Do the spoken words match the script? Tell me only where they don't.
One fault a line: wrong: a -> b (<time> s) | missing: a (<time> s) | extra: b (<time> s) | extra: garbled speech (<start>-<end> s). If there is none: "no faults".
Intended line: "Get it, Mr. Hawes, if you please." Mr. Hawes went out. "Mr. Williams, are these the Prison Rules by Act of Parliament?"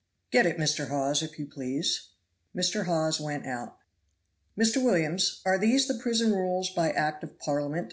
no faults